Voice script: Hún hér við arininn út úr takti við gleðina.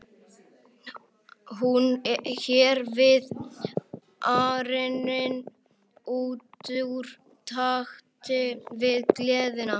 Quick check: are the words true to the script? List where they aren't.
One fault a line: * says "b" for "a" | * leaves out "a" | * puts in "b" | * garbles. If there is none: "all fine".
all fine